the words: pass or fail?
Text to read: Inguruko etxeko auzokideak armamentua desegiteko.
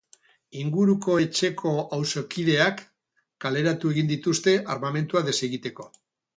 fail